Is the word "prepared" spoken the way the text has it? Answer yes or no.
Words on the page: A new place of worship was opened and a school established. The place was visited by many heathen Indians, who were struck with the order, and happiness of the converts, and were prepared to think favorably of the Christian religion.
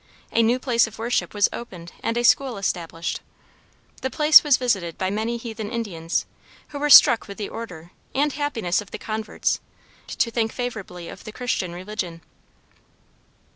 no